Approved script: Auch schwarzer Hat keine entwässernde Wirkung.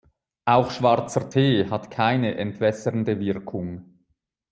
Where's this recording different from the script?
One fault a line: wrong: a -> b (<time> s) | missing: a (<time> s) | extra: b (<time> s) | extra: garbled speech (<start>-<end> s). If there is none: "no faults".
extra: Tee (1.3 s)